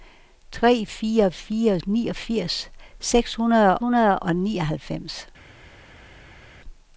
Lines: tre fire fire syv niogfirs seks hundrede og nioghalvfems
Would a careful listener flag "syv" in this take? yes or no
yes